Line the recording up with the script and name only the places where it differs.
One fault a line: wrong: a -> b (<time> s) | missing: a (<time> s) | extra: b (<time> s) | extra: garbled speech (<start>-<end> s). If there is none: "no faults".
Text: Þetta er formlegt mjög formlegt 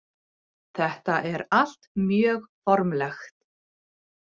wrong: formlegt -> allt (1.6 s)